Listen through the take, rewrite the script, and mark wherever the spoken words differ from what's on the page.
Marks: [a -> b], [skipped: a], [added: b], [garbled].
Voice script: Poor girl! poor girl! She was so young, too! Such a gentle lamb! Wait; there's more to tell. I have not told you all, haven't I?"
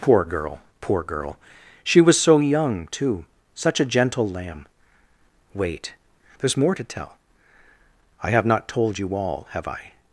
Poor girl! poor girl! She was so young, too! Such a gentle lamb! Wait; there's more to tell. I have not told you all, [haven't -> have] I?"